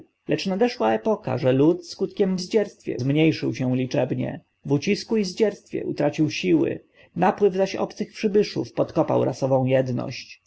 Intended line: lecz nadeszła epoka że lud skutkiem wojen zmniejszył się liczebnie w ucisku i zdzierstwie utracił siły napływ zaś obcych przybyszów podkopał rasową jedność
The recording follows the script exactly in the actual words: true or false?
false